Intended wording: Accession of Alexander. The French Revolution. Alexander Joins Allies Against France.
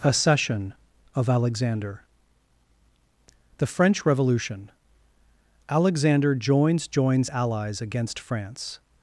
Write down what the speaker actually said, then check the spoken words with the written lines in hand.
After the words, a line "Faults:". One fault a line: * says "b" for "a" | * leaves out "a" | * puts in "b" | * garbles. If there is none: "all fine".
Accession of Alexander. The French Revolution. Alexander Joins Joins Allies Against France.
Faults:
* puts in "Joins"